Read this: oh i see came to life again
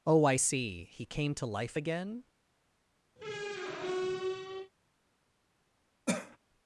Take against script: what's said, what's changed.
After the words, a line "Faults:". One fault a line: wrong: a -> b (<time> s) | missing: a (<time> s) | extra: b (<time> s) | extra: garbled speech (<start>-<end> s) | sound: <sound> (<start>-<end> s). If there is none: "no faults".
oh i see he came to life again
Faults:
extra: he (0.8 s)
sound: squeak (3.2-4.7 s)
sound: cough (6.1-6.4 s)